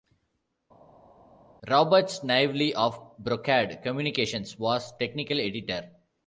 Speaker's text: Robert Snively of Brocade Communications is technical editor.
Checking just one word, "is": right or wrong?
wrong